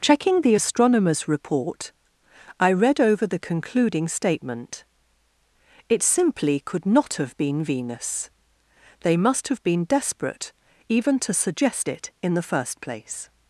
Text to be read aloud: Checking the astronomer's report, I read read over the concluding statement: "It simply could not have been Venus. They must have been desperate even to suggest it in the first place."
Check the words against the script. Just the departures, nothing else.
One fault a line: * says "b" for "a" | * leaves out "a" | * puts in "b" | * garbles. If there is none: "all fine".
* leaves out "read"